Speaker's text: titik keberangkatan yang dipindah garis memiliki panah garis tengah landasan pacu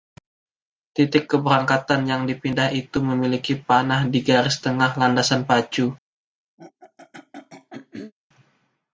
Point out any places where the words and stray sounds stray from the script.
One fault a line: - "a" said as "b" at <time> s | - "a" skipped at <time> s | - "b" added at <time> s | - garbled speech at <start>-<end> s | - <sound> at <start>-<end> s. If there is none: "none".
- "garis" said as "itu" at 2.7 s
- "di" added at 4.1 s
- throat clearing at 6.6-8.1 s